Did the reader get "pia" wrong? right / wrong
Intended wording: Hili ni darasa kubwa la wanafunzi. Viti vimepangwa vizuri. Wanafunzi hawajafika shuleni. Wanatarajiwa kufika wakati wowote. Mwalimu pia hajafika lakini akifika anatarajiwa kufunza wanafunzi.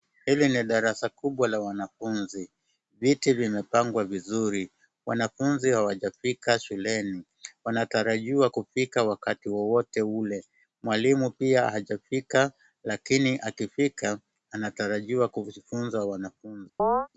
right